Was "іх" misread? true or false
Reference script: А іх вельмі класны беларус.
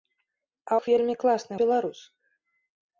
false